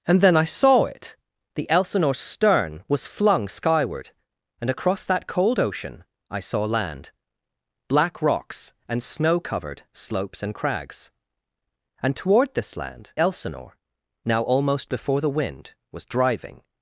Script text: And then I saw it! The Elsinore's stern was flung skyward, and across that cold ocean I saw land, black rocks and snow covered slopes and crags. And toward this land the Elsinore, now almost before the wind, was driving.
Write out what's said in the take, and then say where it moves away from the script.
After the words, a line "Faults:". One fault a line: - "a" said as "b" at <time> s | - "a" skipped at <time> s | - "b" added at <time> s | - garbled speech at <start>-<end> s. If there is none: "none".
And then I saw it! The Elsinore's stern was flung skyward, and across that cold ocean I saw land, black rocks and snow covered slopes and crags. And toward this land Elsinore, now almost before the wind, was driving.
Faults:
- "the" skipped at 13.1 s